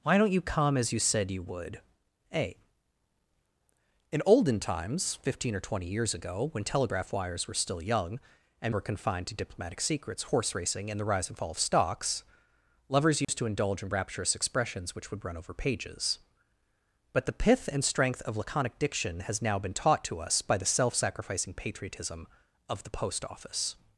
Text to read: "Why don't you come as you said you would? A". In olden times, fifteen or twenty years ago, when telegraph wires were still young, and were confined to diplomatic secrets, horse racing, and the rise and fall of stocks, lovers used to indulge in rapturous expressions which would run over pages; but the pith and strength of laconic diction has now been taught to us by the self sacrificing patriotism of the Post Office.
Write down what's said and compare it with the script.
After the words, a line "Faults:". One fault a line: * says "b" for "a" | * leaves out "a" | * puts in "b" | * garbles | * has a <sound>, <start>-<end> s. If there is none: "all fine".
"Why don't you come as you said you would? A". In olden times, fifteen or twenty years ago, when telegraph wires were still young, and were confined to diplomatic secrets, horse racing, and the rise and fall of stocks, lovers used to indulge in rapturous expressions which would run over pages; but the pith and strength of laconic diction has now been taught to us by the self sacrificing patriotism of the Post Office.
Faults:
* has a dropout, 13.2-13.3 s